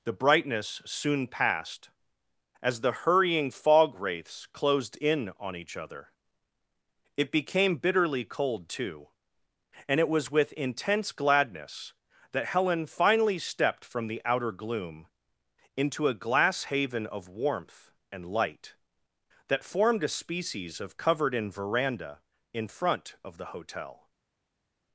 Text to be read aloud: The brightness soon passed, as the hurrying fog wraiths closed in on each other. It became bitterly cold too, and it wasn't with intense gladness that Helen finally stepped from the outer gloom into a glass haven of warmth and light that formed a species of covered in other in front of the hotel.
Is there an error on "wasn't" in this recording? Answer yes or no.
yes